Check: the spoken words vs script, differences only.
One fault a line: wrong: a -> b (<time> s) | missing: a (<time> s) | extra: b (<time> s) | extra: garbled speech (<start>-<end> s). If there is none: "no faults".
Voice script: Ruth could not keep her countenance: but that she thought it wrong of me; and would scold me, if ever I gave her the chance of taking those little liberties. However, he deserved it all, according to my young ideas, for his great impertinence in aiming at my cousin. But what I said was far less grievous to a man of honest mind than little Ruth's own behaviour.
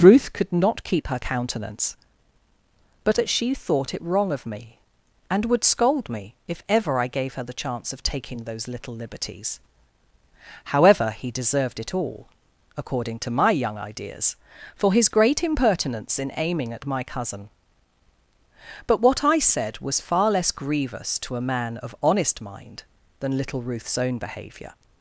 no faults